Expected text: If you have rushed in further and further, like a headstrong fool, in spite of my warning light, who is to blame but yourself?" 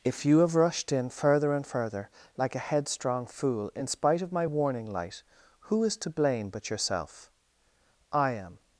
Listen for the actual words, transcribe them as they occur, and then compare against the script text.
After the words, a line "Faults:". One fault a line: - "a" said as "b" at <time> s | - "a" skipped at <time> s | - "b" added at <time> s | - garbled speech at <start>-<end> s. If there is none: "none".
If you have rushed in further and further, like a headstrong fool, in spite of my warning light, who is to blame but yourself?" "I am
Faults:
- "I am" added at 8.1 s